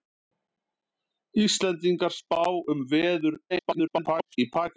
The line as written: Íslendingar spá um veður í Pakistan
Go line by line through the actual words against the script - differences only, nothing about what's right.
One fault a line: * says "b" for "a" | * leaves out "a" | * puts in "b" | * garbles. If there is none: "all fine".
* garbles